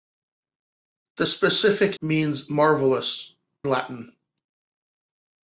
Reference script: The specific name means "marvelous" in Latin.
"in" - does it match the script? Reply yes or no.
no